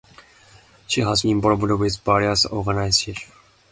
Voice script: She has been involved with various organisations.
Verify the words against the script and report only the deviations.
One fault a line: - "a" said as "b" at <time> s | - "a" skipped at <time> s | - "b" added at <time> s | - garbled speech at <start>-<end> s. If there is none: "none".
- "been" skipped at 1.2 s